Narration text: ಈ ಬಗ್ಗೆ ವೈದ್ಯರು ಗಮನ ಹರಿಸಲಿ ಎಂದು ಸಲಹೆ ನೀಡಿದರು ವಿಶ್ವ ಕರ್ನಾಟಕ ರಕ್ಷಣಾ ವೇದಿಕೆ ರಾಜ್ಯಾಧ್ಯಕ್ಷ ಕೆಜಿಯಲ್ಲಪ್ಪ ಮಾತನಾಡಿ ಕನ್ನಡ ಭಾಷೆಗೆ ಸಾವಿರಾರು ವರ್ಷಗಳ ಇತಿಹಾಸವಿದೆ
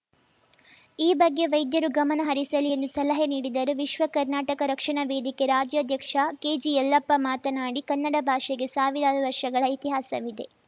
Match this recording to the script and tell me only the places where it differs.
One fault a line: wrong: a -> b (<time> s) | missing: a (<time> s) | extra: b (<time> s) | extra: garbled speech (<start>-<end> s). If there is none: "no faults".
no faults